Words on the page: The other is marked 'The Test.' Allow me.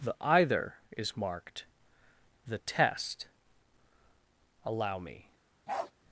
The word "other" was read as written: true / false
false